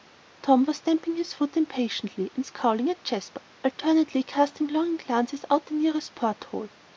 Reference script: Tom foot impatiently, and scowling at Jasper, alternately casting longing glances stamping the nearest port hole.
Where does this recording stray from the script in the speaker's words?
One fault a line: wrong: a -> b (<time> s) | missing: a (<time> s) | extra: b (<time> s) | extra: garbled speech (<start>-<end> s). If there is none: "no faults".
extra: was stamping his (0.7 s)
wrong: stamping -> out (5.5 s)